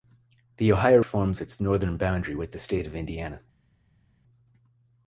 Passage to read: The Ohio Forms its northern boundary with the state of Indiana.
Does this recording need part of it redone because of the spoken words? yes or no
no